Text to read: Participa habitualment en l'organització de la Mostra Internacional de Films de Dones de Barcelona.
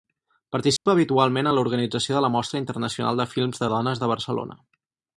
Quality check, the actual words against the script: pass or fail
pass